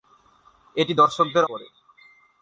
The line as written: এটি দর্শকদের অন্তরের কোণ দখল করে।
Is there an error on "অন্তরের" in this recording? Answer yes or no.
yes